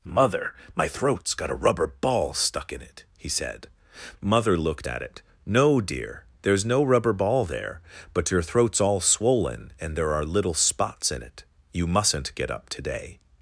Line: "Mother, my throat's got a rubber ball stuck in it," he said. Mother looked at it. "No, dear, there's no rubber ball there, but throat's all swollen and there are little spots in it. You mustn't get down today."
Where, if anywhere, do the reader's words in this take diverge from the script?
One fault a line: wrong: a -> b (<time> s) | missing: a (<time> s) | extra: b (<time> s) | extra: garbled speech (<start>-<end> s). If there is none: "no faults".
extra: your (8.3 s)
wrong: down -> up (12.5 s)